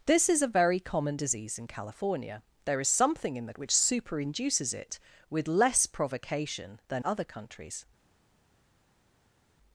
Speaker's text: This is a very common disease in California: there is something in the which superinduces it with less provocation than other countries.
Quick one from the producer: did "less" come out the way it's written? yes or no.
yes